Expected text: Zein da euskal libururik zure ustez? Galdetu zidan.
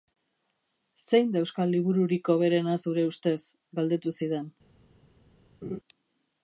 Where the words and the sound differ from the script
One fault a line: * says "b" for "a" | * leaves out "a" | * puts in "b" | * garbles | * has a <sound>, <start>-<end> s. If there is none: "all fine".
* puts in "hoberena"
* has a laugh, 5.6-5.8 s